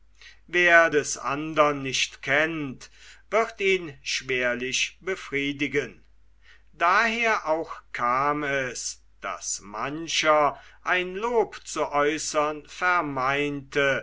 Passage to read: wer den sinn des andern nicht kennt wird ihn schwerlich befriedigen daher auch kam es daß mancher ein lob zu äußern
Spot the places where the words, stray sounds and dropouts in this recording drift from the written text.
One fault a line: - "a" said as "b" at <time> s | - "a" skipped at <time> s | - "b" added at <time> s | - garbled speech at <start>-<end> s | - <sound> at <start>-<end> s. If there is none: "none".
- "den sinn" skipped at 0.9 s